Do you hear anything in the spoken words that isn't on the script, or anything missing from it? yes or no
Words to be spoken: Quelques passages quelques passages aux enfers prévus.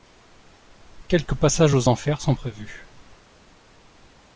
yes